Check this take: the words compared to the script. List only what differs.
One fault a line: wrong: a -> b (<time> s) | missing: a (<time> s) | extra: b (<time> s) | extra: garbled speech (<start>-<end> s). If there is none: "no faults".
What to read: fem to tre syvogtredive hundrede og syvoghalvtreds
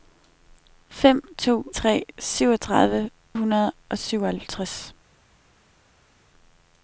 no faults